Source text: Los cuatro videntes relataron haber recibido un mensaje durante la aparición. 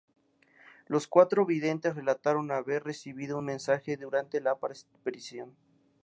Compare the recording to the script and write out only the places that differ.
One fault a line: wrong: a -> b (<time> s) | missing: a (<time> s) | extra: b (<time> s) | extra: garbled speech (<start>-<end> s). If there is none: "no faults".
no faults